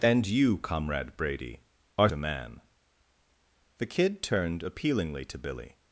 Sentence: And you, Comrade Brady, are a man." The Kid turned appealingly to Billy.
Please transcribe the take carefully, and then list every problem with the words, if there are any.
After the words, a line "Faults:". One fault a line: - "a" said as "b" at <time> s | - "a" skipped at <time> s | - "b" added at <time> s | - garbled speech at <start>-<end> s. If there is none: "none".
And you, Comrade Brady, are a man." The Kid turned appealingly to Billy.
Faults:
none